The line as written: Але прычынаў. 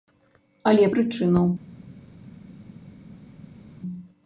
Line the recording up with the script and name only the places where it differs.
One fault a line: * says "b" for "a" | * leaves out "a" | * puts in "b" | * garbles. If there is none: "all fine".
all fine